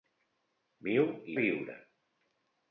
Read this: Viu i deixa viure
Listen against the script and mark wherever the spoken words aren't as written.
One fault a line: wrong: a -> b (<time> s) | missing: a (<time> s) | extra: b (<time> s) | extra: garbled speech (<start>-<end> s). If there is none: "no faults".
missing: deixa (1.4 s)